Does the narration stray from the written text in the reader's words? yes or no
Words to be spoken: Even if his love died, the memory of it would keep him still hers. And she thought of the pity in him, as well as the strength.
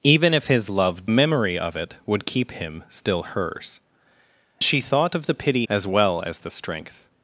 yes